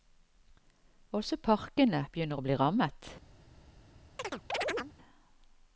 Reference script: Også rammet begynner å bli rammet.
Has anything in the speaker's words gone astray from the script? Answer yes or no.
yes